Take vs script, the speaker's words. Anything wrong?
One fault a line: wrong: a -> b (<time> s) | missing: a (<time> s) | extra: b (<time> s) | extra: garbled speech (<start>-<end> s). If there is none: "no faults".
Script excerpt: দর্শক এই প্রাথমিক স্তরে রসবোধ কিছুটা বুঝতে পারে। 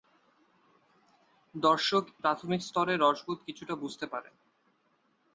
missing: এই (2.0 s)